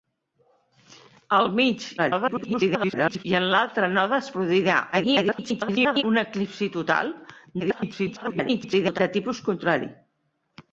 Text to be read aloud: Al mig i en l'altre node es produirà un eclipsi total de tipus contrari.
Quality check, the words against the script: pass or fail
fail